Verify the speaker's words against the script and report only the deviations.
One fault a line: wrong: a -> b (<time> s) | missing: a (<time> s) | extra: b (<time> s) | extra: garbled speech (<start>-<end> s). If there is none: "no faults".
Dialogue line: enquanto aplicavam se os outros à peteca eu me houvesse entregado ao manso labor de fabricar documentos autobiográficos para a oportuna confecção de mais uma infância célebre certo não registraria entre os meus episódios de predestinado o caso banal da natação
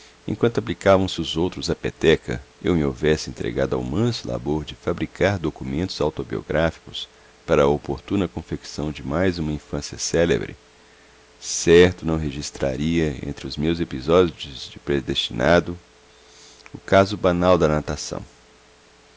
no faults